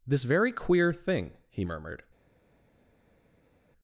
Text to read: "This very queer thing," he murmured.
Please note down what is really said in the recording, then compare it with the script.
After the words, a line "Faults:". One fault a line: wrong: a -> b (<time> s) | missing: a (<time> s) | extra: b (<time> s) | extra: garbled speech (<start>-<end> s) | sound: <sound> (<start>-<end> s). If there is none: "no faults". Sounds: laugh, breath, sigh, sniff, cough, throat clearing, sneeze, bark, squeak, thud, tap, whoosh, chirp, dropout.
"This very queer thing," he murmured.
Faults:
no faults